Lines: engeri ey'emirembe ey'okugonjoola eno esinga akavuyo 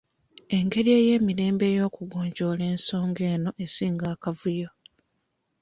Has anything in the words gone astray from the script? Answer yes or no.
yes